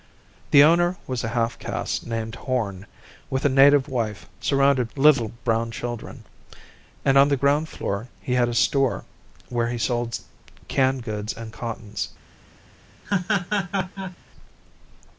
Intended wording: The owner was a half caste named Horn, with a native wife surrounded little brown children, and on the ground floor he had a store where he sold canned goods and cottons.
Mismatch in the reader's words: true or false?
false